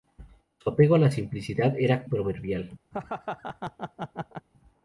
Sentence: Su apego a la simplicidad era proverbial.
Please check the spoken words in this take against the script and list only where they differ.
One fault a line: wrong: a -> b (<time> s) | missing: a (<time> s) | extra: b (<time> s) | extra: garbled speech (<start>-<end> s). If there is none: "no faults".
no faults